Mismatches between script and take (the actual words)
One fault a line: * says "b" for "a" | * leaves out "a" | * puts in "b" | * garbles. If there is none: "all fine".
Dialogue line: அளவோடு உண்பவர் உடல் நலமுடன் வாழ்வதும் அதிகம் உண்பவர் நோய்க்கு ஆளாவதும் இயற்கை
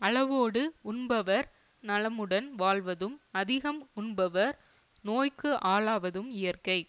* leaves out "உடல்"